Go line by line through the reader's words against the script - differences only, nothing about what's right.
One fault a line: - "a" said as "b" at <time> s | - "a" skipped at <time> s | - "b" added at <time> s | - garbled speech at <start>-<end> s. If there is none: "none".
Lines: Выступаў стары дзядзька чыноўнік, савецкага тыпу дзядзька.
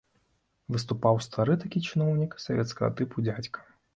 - "дзядзька" said as "такі" at 1.6 s